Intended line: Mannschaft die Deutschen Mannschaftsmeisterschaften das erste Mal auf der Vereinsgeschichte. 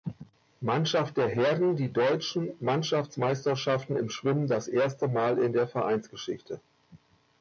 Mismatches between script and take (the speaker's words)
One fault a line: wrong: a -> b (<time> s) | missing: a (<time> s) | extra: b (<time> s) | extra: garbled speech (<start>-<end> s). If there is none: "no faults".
extra: der Herren (1.2 s)
extra: im Schwimmen (4.0 s)
wrong: auf -> in (5.4 s)